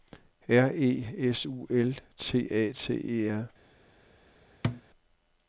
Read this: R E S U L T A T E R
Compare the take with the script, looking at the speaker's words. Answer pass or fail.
pass